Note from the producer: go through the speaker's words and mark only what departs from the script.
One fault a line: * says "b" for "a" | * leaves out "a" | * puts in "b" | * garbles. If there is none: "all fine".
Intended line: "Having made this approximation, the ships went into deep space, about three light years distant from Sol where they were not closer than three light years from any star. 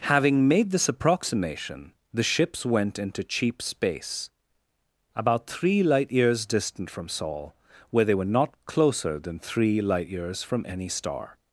* says "cheap" for "deep"